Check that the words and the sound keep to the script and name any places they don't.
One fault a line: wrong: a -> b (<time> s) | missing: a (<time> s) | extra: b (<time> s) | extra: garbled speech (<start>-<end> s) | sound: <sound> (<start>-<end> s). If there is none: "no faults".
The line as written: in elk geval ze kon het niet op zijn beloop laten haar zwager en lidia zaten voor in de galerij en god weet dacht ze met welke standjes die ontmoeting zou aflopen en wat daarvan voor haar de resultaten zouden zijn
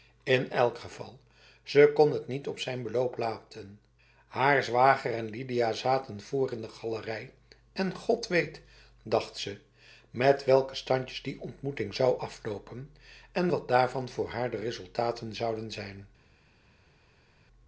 no faults